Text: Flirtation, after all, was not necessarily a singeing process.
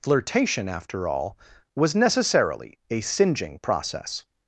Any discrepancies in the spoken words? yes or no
yes